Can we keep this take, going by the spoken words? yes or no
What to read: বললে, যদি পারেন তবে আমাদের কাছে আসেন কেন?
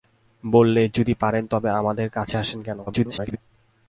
no